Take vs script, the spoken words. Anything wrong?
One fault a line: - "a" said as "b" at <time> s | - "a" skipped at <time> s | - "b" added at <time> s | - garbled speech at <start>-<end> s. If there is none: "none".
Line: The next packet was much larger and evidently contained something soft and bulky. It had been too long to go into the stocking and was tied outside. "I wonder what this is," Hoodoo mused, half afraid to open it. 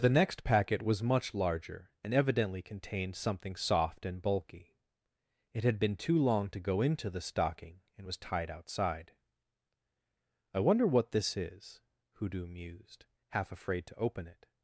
none